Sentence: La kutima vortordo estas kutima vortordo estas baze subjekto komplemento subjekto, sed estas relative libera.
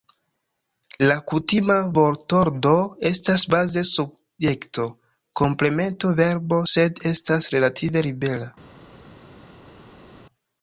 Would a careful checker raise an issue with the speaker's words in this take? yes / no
yes